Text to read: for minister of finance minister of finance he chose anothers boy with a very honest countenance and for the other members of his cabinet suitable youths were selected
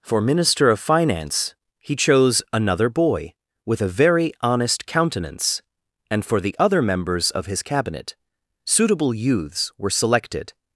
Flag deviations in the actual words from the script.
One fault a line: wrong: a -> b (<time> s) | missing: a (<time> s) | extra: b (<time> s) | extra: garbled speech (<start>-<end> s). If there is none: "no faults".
missing: minister of finance (1.6 s)
wrong: anothers -> another (2.5 s)